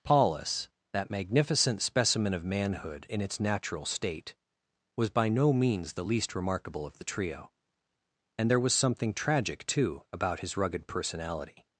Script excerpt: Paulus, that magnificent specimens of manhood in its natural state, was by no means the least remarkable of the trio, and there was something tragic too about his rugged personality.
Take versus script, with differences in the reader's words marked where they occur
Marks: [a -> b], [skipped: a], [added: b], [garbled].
Paulus, that magnificent [specimens -> specimen] of manhood in its natural state, was by no means the least remarkable of the trio, and there was something tragic too about his rugged personality.